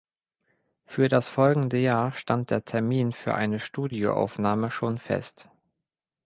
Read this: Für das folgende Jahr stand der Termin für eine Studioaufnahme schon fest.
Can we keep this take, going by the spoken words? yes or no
yes